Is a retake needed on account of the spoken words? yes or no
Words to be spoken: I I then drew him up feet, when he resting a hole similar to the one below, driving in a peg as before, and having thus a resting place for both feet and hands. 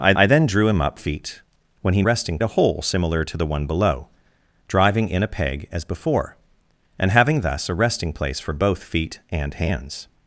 no